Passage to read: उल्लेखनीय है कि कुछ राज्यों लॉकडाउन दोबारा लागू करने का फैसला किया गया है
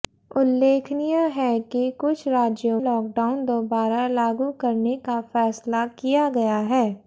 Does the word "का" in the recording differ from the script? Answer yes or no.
no